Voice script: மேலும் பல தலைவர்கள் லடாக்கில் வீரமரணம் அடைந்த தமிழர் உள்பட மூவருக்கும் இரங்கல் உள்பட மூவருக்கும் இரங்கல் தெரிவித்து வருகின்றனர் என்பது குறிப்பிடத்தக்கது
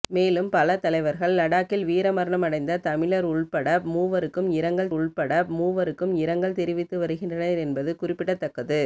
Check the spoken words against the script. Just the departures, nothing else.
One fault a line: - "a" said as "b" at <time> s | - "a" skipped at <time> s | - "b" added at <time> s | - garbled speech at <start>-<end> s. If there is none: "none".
none